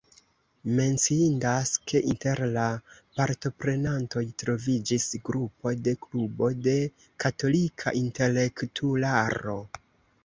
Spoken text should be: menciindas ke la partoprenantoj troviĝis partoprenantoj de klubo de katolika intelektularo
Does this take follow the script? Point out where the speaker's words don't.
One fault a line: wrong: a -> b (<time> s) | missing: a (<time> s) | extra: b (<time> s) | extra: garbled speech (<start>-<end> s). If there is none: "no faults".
extra: inter (2.1 s)
wrong: partoprenantoj -> grupo (5.3 s)